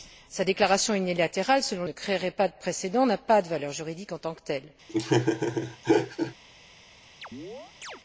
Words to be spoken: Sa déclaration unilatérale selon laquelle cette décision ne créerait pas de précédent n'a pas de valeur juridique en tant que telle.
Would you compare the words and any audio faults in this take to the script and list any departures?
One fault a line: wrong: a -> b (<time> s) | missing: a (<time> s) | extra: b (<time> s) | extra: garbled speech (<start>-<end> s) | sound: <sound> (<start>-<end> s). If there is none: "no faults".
missing: laquelle cette décision (1.8 s)
sound: laugh (4.9-6.3 s)
sound: chirp (7.2-8.0 s)